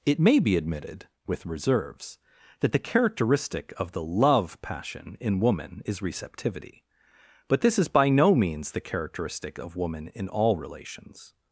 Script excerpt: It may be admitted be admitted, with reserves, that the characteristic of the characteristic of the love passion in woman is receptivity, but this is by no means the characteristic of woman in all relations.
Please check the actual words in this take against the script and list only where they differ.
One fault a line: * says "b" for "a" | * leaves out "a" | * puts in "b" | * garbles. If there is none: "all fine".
* leaves out "be admitted"
* leaves out "characteristic of the"